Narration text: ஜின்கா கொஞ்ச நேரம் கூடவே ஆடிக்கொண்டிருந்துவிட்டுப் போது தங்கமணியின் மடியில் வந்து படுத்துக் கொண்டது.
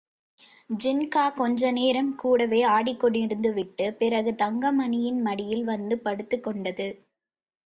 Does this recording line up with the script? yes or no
no